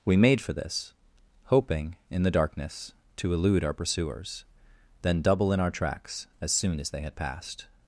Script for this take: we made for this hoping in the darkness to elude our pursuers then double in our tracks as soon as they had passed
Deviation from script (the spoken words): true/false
false